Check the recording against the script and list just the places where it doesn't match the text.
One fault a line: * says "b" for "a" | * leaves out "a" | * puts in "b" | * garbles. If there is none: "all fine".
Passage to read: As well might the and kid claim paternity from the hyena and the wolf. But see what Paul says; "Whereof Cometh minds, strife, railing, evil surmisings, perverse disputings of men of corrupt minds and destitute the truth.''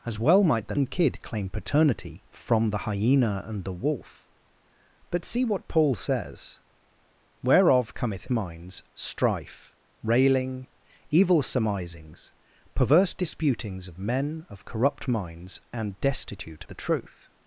all fine